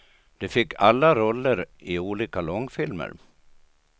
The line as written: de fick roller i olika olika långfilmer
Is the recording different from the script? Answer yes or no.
yes